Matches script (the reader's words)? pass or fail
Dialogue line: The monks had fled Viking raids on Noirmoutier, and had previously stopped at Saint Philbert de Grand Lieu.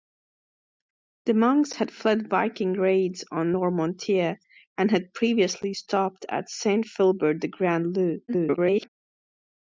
fail